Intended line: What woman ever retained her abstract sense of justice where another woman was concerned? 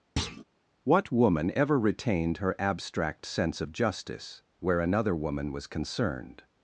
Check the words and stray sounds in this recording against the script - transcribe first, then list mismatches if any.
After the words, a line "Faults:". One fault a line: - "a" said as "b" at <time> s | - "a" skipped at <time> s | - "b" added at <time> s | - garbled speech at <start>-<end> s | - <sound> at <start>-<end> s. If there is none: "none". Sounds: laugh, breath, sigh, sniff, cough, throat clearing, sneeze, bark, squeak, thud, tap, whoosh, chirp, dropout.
What woman ever retained her abstract sense of justice where another woman was concerned?
Faults:
- thud at 0.2-0.4 s